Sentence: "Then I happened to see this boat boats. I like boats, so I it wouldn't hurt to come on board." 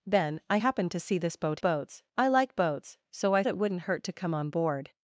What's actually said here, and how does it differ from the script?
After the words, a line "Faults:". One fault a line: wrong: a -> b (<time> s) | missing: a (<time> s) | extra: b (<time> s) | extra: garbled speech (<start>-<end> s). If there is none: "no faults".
"Then I happened to see this boat boats. I like boats, so I it wouldn't hurt to come on board."
Faults:
no faults